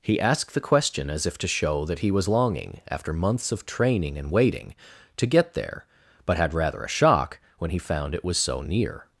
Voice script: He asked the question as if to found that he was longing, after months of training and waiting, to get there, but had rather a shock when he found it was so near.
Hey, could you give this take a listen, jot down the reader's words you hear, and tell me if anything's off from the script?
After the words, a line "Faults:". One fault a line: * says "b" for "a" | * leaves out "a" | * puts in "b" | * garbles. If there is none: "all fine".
He asked the question as if to show that he was longing, after months of training and waiting, to get there, but had rather a shock when he found it was so near.
Faults:
* says "show" for "found"